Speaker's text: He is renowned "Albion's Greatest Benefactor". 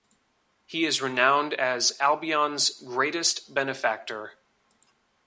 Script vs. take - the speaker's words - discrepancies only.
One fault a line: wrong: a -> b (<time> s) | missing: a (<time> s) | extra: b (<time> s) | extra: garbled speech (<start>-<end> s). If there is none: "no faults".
extra: as (1.5 s)